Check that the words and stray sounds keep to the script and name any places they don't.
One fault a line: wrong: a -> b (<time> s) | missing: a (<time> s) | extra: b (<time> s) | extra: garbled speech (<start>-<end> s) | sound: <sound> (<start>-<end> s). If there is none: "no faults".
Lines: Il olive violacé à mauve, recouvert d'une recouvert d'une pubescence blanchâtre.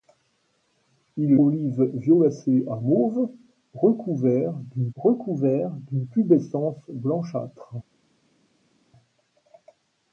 no faults